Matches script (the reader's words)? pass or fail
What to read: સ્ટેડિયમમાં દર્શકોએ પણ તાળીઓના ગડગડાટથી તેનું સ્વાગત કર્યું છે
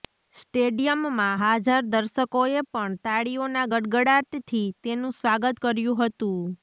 fail